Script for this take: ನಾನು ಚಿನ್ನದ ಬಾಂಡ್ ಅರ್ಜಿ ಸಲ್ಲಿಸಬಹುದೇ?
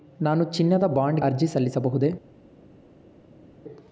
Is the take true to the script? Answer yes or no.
yes